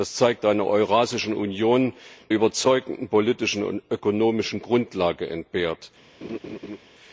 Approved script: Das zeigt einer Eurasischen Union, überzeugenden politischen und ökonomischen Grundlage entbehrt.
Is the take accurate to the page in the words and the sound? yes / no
no